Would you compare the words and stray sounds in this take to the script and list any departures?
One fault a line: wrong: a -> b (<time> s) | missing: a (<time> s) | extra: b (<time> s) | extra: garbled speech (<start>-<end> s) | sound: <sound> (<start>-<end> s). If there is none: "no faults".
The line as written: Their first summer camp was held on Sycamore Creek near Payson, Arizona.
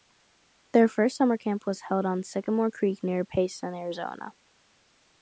no faults